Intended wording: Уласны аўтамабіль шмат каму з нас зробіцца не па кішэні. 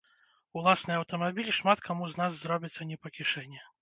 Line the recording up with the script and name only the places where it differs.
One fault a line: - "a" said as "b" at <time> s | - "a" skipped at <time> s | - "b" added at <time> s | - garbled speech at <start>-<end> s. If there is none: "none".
none